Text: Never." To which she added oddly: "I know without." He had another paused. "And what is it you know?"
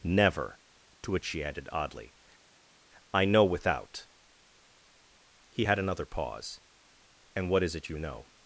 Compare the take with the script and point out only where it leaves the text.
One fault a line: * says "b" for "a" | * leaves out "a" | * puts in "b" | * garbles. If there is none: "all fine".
* says "pause" for "paused"